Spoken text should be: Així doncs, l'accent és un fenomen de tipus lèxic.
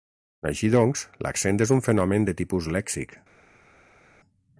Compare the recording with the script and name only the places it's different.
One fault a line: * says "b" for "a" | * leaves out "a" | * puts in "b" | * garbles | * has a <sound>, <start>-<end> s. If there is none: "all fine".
all fine